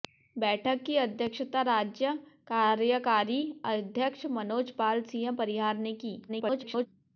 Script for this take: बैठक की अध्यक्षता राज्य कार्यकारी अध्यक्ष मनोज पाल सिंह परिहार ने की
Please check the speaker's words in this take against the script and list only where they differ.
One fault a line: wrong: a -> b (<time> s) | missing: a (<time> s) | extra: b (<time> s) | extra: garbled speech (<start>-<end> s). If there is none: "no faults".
extra: garbled speech (6.3-6.9 s)